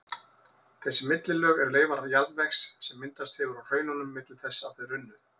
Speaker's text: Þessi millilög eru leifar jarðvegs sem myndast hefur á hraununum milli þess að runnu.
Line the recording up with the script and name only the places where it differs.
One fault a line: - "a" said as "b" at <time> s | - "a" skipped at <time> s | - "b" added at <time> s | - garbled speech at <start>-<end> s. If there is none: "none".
- "þau" added at 4.8 s